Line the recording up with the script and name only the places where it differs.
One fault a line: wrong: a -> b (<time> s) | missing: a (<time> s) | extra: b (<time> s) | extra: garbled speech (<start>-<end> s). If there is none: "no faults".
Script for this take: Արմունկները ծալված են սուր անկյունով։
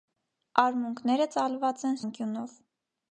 missing: սուր (2.0 s)